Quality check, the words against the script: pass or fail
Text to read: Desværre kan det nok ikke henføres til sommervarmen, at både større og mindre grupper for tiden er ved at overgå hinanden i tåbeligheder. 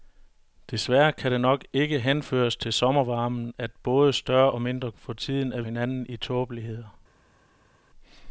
fail